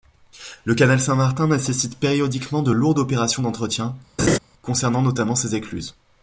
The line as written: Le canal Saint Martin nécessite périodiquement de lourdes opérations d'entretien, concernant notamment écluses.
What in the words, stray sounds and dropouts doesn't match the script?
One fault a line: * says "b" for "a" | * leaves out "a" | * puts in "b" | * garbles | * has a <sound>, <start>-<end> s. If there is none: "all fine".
* has a laugh, 4.2-4.4 s
* puts in "ses"